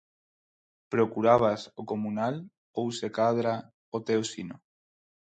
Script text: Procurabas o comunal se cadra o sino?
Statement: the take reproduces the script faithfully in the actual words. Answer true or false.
false